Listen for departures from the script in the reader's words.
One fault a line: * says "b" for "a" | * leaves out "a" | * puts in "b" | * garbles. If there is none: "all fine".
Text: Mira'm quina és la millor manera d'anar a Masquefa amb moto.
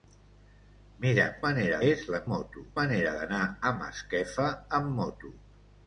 * says "manera" for "quina"
* says "moto" for "millor"